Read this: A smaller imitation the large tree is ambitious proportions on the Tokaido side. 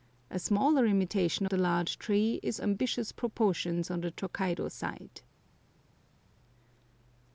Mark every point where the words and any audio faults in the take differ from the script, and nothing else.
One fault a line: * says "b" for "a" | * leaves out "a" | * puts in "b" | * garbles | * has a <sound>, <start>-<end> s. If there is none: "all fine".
all fine